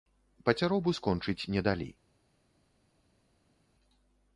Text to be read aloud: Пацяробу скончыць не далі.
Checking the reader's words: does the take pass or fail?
pass